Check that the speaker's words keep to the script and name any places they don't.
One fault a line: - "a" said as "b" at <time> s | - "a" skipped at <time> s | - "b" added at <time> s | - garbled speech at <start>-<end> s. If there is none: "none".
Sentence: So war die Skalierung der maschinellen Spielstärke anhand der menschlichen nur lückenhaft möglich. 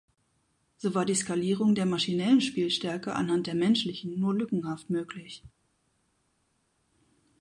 none